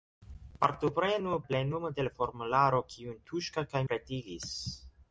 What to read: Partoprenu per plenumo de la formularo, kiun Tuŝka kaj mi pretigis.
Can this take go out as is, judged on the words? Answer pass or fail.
fail